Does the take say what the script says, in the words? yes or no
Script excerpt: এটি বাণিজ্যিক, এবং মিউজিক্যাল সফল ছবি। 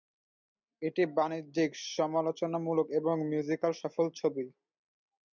no